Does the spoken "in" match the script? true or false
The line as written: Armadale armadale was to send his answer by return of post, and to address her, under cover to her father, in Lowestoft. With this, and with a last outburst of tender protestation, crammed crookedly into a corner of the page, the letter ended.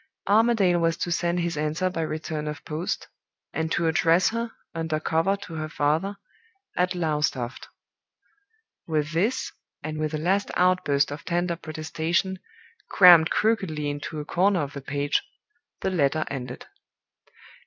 false